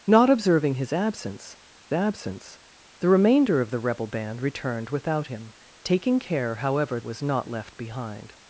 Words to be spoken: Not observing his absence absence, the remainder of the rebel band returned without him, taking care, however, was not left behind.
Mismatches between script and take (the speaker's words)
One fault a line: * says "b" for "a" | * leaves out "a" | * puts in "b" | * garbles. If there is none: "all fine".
all fine